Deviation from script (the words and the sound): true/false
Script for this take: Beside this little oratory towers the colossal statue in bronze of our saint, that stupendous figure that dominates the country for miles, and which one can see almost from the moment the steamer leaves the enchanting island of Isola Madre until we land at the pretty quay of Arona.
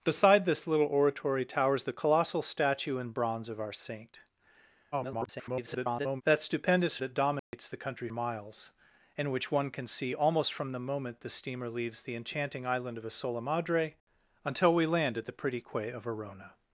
true